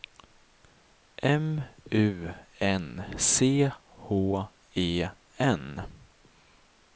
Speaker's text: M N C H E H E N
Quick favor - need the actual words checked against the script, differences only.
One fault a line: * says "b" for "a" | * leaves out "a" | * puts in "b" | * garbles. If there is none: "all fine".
* puts in "U"
* leaves out "H E"